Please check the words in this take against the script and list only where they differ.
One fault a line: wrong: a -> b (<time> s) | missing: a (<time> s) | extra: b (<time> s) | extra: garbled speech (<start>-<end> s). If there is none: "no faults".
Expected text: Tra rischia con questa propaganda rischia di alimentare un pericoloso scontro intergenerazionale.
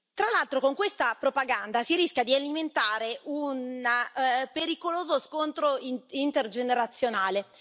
wrong: rischia -> l'altro (0.3 s)
extra: si (1.8 s)